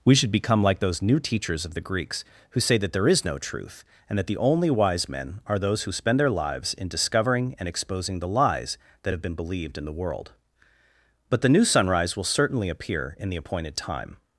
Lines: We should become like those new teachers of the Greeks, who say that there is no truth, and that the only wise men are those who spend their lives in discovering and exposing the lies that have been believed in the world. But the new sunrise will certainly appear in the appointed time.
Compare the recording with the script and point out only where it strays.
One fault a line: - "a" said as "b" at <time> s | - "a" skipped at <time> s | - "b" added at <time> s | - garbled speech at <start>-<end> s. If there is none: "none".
none